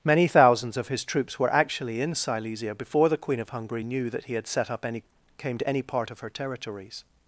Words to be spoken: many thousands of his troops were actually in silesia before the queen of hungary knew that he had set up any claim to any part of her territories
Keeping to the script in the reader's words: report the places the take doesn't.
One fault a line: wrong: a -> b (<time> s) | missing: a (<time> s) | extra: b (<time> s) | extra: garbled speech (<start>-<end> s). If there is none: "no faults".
wrong: claim -> came (5.4 s)